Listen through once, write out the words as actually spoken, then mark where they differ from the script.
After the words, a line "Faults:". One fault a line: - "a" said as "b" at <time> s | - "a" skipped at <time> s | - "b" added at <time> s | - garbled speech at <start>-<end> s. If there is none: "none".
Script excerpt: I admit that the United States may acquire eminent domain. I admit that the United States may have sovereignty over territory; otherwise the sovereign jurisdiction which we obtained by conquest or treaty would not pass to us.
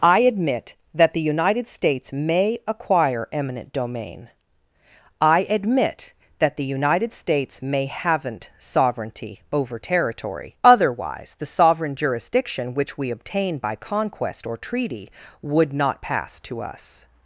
I admit that the United States may acquire eminent domain. I admit that the United States may haven't sovereignty over territory; otherwise the sovereign jurisdiction which we obtain by conquest or treaty would not pass to us.
Faults:
- "have" said as "haven't" at 7.8 s
- "obtained" said as "obtain" at 13.1 s